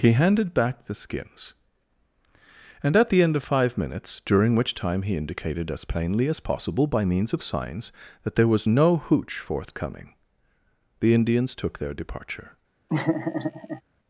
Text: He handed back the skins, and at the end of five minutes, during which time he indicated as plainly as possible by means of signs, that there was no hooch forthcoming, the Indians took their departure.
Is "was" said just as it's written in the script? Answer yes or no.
yes